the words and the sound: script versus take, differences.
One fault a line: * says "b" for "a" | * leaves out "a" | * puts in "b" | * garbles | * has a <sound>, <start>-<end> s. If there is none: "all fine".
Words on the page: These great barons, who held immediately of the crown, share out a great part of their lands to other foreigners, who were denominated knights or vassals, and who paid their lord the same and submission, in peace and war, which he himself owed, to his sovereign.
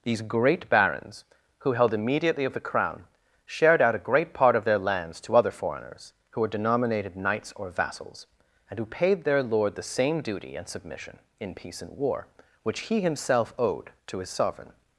* says "shared" for "share"
* puts in "duty"